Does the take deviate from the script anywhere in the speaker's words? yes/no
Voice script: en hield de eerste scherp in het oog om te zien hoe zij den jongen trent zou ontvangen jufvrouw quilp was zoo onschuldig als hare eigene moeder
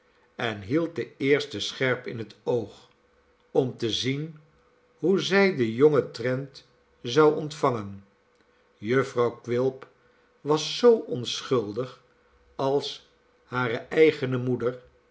no